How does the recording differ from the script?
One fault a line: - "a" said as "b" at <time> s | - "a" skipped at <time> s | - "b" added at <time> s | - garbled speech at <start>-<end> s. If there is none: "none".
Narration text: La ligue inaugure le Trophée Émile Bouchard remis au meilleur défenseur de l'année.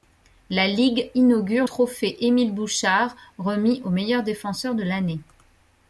- "le" skipped at 1.7 s